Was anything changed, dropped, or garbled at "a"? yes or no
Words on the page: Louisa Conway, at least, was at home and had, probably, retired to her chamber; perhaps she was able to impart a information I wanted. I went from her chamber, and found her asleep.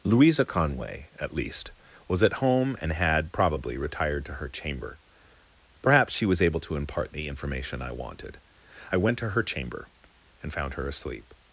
yes